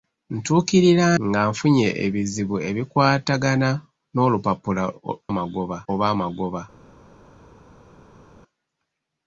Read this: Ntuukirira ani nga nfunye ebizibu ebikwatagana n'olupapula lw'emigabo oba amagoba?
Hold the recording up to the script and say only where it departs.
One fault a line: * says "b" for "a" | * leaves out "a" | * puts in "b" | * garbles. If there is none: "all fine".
* leaves out "ani"
* says "amagoba" for "lw'emigabo"